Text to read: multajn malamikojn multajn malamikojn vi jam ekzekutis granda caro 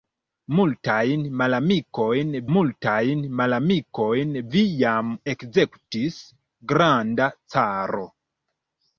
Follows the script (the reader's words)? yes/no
yes